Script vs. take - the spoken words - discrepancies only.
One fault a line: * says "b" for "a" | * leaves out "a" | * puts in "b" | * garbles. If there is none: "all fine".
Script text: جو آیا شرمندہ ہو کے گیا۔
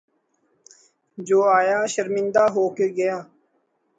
all fine